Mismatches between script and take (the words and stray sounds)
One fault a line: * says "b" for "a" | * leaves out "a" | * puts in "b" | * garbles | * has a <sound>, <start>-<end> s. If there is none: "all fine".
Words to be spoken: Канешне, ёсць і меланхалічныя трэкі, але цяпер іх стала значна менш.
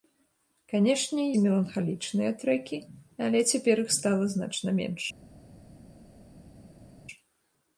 * leaves out "ёсць"